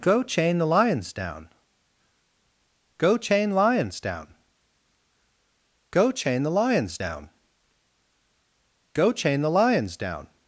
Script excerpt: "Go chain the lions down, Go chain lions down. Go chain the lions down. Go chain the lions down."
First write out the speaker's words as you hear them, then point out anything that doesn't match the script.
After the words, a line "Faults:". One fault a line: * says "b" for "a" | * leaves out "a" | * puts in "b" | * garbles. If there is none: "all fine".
"Go chain the lions down, Go chain lions down. Go chain the lions down. Go chain the lions down."
Faults:
all fine